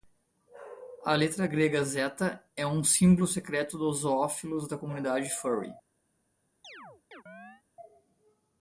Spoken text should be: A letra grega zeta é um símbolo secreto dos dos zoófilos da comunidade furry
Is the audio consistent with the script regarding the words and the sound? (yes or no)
no